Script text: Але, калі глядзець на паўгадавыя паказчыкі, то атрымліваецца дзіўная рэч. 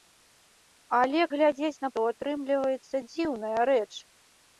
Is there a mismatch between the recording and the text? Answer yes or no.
yes